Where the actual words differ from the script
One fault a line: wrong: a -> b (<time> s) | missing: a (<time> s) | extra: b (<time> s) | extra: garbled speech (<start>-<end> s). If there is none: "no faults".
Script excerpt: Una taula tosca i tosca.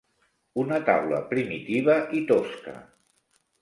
wrong: tosca -> primitiva (1.4 s)